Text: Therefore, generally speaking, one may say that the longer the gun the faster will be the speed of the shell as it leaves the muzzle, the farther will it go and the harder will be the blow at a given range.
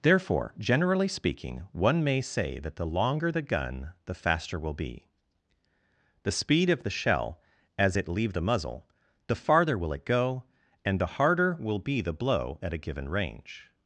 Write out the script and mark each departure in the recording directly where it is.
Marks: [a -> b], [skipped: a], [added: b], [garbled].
Therefore, generally speaking, one may say that the longer the gun the faster will be the speed of the shell as it [leaves -> leave] the muzzle, the farther will it go and the harder will be the blow at a given range.